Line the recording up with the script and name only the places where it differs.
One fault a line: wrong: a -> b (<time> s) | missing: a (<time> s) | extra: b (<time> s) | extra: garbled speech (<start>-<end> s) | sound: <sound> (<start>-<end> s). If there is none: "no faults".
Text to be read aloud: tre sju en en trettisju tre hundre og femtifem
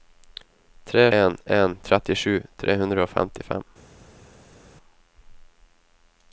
missing: sju (1.1 s)